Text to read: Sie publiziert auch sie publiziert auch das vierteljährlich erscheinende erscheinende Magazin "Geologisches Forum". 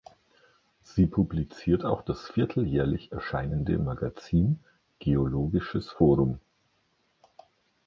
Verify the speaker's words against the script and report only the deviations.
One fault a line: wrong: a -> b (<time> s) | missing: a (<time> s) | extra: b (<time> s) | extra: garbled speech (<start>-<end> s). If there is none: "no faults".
missing: sie publiziert auch (2.0 s)
missing: erscheinende (3.8 s)